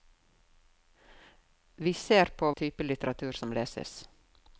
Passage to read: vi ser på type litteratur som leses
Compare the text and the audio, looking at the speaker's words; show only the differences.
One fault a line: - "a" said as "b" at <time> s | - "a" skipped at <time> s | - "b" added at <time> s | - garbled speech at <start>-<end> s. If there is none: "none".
none